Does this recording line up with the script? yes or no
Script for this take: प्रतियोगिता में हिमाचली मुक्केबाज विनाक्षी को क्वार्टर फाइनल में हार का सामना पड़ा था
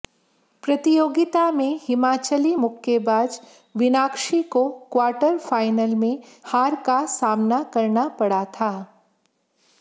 no